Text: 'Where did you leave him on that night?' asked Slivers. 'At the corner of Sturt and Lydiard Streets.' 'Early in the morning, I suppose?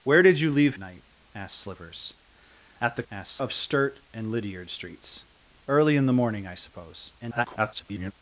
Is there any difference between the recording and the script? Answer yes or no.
yes